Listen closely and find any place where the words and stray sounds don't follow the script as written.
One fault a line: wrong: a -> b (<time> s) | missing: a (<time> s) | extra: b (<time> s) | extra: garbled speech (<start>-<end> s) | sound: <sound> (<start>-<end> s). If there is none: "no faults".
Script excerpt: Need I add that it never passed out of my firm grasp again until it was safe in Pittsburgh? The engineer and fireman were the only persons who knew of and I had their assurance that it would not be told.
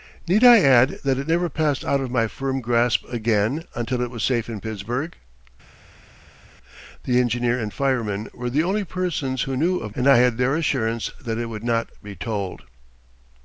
no faults